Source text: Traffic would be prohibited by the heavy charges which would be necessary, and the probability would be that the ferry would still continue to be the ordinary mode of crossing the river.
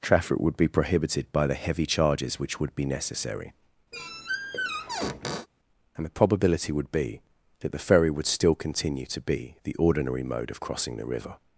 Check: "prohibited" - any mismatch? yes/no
no